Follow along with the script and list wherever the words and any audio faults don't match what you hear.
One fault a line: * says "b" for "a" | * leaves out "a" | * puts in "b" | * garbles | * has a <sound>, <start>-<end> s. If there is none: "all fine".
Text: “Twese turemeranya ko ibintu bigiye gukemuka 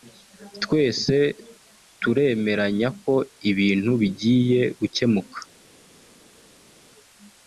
all fine